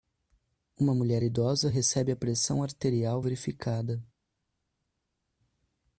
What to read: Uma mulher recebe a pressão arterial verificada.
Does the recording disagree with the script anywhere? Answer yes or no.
yes